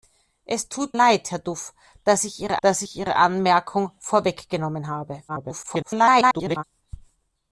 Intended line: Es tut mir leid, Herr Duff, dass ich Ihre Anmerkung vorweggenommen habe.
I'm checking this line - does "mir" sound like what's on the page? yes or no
no